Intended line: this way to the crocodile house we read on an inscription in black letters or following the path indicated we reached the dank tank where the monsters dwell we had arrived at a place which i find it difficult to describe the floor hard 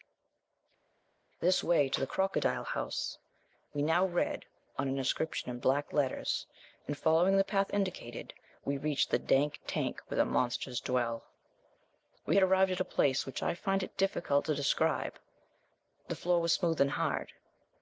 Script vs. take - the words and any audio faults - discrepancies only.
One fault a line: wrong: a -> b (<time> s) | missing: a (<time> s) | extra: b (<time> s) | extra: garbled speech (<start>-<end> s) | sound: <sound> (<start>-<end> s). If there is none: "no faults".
extra: now (3.8 s)
wrong: or -> and (6.9 s)
extra: was smooth and (16.4 s)